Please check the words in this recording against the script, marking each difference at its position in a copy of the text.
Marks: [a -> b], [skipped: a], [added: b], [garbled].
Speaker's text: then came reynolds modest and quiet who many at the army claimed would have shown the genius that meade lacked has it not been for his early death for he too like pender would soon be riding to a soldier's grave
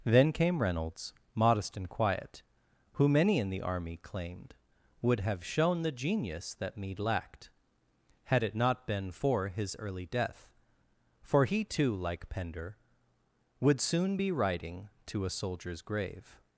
then came reynolds modest and quiet who many [at -> in] the army claimed would have shown the genius that meade lacked [has -> had] it not been for his early death for he too like pender would soon be riding to a soldier's grave